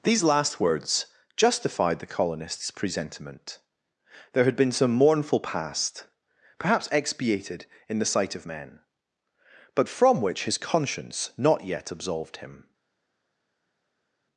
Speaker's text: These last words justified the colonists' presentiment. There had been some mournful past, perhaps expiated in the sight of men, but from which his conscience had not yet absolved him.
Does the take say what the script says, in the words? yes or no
no